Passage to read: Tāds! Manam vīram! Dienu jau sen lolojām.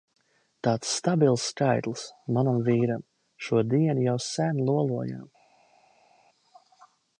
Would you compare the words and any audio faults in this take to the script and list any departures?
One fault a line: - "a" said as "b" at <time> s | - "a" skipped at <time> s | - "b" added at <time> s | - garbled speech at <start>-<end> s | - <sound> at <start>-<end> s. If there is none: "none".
- "stabils skaitlis" added at 1.0 s
- "Šo" added at 3.5 s